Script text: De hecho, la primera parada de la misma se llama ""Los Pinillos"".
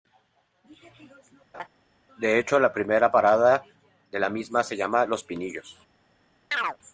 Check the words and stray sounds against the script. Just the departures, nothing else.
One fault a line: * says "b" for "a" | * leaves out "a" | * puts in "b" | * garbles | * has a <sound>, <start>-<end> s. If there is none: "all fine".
* has a laugh, 1.5-1.7 s
* has a chirp, 6.5-6.8 s